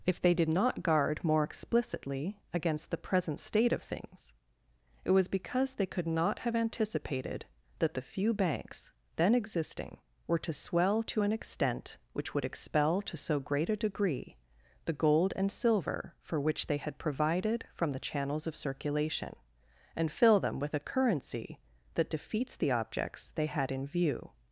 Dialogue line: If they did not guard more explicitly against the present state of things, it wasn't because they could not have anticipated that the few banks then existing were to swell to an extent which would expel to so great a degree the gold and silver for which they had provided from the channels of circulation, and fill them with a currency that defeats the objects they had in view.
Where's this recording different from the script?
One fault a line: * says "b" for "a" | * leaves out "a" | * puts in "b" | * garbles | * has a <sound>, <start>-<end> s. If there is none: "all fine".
* says "was" for "wasn't"